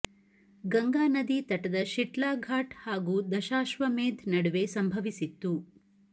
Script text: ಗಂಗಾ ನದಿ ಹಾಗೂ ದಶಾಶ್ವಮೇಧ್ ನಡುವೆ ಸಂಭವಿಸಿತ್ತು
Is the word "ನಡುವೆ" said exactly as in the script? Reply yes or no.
yes